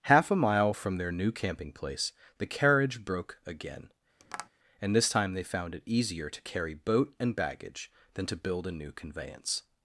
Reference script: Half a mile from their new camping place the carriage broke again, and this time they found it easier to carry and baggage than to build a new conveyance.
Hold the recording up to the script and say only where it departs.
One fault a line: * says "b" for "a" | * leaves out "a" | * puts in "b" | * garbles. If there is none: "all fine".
* puts in "boat"